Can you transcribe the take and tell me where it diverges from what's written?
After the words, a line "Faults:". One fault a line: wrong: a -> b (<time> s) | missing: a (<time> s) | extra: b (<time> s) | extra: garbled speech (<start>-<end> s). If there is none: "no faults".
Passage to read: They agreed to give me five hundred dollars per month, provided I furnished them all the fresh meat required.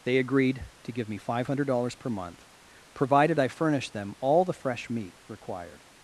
They agreed to give me five hundred dollars per month, provided I furnished them all the fresh meat required.
Faults:
no faults